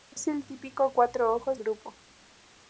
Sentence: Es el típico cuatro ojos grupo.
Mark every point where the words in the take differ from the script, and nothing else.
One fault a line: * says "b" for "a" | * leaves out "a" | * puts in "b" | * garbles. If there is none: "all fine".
all fine